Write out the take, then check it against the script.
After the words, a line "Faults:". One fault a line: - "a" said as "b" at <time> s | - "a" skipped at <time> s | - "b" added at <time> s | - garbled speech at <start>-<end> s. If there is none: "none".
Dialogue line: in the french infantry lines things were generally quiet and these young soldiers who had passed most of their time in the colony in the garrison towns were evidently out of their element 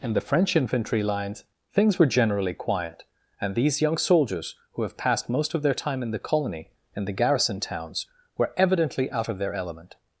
in the french infantry lines things were generally quiet and these young soldiers who have passed most of their time in the colony in the garrison towns were evidently out of their element
Faults:
- "had" said as "have" at 4.8 s